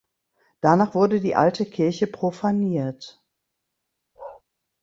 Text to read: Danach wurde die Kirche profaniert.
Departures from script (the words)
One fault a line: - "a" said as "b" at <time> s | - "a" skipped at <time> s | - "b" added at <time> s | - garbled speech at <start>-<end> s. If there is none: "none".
- "Alte" added at 1.4 s